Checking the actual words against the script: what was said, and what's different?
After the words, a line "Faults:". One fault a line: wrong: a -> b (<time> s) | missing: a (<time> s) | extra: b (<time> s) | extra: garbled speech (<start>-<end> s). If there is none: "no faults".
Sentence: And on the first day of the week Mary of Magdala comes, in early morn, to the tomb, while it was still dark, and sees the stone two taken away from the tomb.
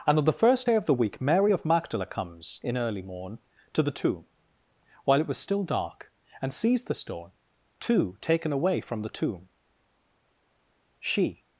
And on the first day of the week Mary of Magdala comes, in early morn, to the tomb, while it was still dark, and sees the stone two taken away from the tomb. She
Faults:
extra: She (11.0 s)